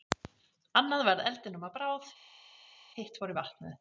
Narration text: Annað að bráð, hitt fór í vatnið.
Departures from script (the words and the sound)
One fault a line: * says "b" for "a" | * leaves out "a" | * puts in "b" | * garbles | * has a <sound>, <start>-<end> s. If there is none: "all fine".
* puts in "varð eldinum"